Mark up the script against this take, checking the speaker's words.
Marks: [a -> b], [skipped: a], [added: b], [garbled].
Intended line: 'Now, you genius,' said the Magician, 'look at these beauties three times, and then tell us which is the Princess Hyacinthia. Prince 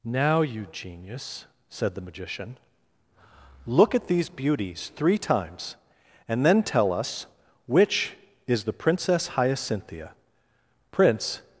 'Now, you genius,' said the Magician, 'look at these beauties three times, and then tell us which is the Princess Hyacinthia. Prince